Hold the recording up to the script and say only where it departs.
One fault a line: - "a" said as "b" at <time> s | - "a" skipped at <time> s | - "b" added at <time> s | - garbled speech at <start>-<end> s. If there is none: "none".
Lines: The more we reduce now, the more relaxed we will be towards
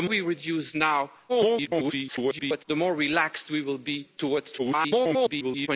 - "more" skipped at 0.1 s
- garbled speech at 1.3-2.6 s
- garbled speech at 4.6-5.7 s